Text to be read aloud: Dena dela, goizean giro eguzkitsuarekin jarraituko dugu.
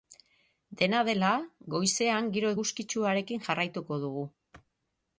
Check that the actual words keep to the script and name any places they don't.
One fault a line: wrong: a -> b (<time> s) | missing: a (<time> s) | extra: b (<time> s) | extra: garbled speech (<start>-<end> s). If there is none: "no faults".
no faults